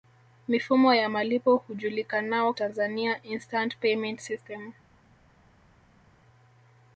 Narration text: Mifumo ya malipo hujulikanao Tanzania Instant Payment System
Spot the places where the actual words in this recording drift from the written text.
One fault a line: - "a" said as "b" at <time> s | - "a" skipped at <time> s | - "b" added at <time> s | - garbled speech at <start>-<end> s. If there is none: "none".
none